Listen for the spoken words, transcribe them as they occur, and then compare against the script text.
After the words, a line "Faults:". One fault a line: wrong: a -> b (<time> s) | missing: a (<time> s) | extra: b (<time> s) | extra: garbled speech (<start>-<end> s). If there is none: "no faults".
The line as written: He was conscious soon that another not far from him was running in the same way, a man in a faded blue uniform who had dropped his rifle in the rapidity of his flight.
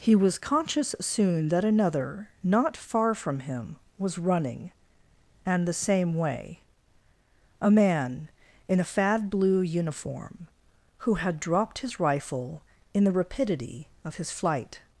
He was conscious soon that another not far from him was running and the same way, a man in a fad blue uniform who had dropped his rifle in the rapidity of his flight.
Faults:
wrong: in -> and (5.5 s)
wrong: faded -> fad (8.8 s)